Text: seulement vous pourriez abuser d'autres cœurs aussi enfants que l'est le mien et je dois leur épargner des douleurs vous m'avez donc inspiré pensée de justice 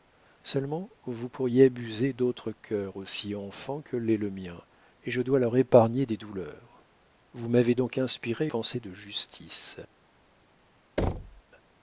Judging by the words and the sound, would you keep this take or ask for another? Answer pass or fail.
fail